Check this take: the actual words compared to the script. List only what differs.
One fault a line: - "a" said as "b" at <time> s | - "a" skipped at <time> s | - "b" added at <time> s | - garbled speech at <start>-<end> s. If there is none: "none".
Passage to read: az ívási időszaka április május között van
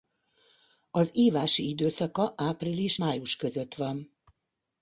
none